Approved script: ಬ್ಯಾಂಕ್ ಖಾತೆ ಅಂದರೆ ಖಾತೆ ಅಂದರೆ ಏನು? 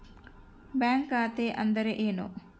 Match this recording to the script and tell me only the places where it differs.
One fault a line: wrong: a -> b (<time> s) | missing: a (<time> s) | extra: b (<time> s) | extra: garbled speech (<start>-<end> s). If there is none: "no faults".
missing: ಖಾತೆ ಅಂದರೆ (1.9 s)